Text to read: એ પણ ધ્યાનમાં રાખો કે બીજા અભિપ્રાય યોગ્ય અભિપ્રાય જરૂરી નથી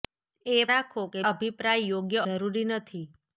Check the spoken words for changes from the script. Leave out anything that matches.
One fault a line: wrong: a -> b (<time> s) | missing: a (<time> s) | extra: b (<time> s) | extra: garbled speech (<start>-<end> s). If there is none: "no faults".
missing: પણ ધ્યાનમાં (0.6 s)
missing: બીજા (1.2 s)
missing: અભિપ્રાય (2.3 s)